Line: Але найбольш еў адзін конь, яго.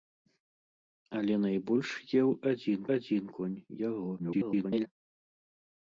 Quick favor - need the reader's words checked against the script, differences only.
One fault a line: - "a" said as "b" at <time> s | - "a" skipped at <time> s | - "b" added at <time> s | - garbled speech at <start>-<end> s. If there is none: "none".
- "адзін" added at 3.0 s
- garbled speech at 4.2-4.9 s